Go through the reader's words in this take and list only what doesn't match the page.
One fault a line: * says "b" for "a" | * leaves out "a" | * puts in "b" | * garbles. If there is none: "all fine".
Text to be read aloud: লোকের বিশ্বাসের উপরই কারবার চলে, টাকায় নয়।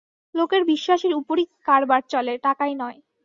all fine